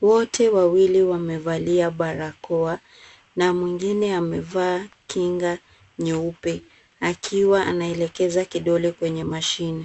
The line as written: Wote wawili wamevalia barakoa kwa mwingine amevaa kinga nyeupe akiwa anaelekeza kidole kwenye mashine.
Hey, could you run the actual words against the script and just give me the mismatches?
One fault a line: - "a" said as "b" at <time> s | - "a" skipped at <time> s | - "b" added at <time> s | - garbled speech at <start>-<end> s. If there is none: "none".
- "kwa" said as "na" at 3.4 s